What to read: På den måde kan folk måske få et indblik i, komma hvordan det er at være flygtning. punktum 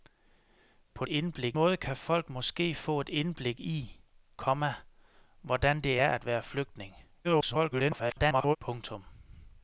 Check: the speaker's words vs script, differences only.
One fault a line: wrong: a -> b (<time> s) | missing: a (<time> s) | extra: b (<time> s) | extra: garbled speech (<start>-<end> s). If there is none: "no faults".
wrong: den -> indblik (1.1 s)
extra: garbled speech (7.2-8.6 s)